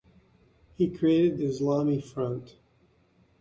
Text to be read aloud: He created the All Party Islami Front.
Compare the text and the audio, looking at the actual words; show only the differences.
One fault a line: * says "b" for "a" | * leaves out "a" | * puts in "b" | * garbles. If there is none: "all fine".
* leaves out "the All Party"